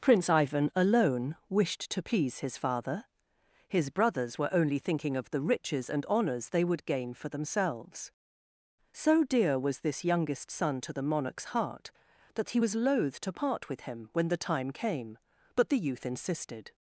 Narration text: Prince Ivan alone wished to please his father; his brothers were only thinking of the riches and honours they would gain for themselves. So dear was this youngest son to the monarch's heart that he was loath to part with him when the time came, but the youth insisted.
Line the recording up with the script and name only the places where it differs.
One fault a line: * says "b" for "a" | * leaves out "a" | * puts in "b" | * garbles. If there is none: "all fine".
all fine